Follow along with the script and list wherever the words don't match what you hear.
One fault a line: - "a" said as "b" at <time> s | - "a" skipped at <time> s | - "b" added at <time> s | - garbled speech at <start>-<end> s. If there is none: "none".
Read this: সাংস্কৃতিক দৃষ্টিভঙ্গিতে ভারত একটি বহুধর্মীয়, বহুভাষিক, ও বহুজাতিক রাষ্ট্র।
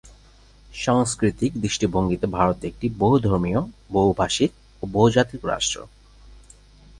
none